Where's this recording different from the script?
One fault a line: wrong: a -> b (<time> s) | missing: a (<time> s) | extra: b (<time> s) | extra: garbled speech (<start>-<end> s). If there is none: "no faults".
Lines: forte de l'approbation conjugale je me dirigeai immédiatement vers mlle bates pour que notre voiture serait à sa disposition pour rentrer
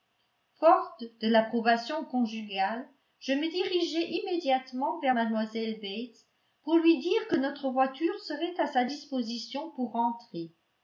extra: lui dire (6.8 s)